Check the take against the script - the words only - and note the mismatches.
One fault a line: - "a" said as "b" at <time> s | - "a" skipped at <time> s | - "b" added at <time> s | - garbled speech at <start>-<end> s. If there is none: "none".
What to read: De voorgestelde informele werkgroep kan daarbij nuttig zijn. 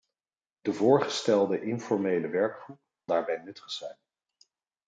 - "kan" skipped at 2.8 s